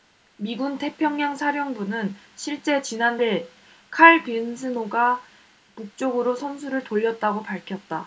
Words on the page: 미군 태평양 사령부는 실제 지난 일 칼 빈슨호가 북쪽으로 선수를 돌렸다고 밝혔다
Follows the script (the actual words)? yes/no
yes